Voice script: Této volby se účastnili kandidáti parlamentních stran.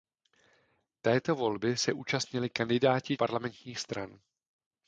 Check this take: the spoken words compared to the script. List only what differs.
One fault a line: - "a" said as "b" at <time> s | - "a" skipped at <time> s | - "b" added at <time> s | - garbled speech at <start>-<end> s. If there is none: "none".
none